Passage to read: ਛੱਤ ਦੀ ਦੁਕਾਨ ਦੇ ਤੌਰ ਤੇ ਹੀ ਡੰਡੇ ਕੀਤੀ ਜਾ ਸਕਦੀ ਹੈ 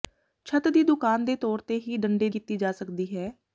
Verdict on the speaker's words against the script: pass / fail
pass